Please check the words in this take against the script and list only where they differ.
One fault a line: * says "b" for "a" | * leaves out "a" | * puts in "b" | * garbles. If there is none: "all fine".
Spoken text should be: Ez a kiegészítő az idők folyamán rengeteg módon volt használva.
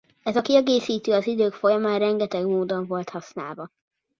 all fine